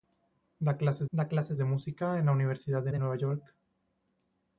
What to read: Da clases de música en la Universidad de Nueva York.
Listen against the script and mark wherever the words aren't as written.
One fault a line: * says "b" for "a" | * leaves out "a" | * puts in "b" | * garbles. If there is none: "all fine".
* puts in "da clases"
* puts in "de"